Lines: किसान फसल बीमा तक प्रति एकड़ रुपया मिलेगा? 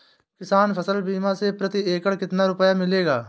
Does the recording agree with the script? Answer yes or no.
no